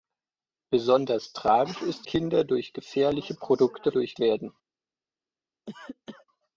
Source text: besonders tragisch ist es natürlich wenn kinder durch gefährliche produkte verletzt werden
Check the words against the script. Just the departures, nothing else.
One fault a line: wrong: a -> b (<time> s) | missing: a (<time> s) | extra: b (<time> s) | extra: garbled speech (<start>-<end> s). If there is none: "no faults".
missing: es natürlich wenn (2.1 s)
wrong: verletzt -> durch (3.9 s)